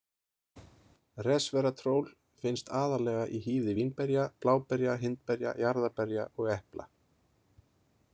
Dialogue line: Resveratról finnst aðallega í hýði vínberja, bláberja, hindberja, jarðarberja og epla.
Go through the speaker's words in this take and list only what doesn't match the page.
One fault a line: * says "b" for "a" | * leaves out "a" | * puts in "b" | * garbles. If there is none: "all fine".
all fine